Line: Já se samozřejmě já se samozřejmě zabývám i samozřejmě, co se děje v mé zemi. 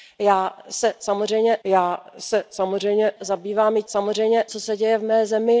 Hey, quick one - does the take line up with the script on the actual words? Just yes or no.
yes